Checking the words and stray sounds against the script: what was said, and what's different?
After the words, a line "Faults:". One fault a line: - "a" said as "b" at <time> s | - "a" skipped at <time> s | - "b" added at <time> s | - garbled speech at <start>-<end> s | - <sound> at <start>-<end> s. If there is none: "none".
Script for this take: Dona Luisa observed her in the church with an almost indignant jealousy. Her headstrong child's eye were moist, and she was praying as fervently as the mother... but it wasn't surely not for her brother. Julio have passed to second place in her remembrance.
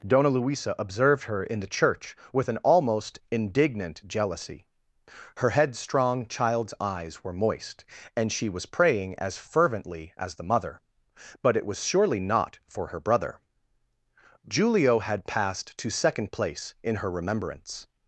Dona Luisa observed her in the church with an almost indignant jealousy. Her headstrong child's eyes were moist, and she was praying as fervently as the mother... but it was surely not for her brother. Julio had passed to second place in her remembrance.
Faults:
- "eye" said as "eyes" at 6.8 s
- "wasn't" said as "was" at 11.6 s
- "have" said as "had" at 15.0 s